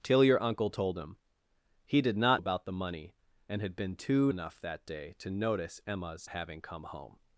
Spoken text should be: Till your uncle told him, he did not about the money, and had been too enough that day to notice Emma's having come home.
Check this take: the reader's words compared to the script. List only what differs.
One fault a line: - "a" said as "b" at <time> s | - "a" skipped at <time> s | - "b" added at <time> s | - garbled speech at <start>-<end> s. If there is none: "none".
none